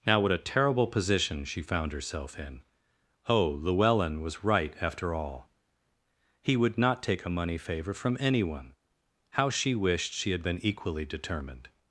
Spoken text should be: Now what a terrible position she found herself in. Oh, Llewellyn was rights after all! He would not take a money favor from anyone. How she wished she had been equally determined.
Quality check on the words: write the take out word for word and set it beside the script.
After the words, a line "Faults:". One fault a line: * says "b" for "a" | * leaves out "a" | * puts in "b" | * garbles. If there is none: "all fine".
Now what a terrible position she found herself in. Oh, Llewellyn was right after all! He would not take a money favor from anyone. How she wished she had been equally determined.
Faults:
* says "right" for "rights"